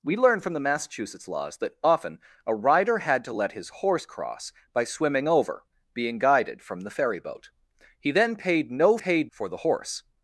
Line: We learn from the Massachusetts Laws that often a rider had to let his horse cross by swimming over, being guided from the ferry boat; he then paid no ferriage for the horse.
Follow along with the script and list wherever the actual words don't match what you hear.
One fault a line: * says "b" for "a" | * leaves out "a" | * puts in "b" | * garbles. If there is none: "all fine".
* says "paid" for "ferriage"